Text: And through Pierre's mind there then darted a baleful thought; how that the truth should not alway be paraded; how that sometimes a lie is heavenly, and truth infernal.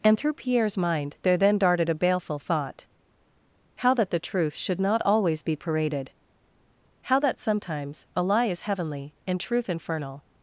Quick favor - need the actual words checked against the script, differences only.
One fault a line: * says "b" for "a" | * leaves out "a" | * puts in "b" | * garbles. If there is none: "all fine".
* says "always" for "alway"